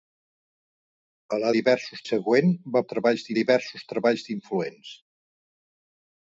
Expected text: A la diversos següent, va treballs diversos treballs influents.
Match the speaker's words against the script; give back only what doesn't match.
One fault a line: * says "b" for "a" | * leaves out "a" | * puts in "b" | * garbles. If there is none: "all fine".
all fine